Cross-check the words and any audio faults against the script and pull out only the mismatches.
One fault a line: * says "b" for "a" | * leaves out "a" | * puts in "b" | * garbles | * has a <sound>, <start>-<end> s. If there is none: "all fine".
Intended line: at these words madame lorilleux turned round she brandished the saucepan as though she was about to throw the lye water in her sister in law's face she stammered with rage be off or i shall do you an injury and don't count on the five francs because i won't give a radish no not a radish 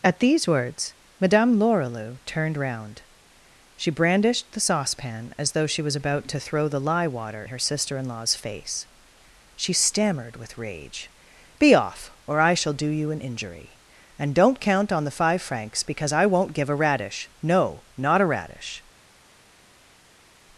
* leaves out "in"